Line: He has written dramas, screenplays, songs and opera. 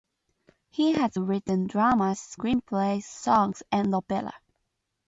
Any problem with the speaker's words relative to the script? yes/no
no